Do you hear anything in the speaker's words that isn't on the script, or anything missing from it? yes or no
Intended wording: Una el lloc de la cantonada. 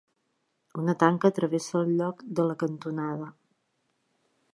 yes